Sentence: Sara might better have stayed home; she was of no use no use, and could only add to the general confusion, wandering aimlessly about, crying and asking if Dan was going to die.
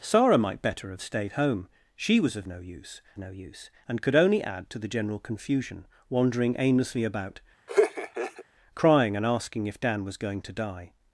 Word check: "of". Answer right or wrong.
right